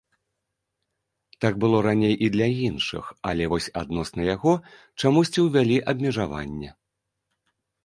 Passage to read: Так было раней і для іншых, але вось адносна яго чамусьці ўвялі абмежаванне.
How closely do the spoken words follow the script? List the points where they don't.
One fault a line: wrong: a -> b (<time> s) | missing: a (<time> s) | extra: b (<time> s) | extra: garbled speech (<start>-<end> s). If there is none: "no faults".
no faults